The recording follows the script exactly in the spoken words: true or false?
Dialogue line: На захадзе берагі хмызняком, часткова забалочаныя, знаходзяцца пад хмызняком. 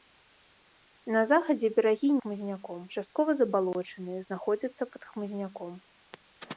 true